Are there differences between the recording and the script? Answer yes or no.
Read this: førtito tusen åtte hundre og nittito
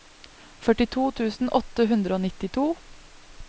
no